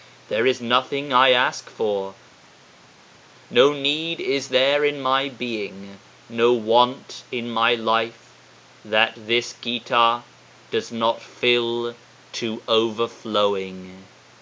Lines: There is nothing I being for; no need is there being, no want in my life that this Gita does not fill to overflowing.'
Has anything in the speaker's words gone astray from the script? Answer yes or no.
yes